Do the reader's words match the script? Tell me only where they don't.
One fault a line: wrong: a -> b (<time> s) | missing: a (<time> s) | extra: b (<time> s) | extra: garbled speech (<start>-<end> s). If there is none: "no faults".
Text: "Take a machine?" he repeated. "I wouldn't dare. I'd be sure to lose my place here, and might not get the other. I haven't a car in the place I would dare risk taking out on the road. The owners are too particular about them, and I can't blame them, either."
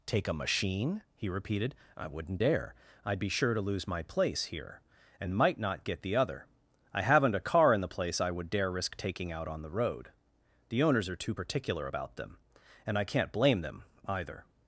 no faults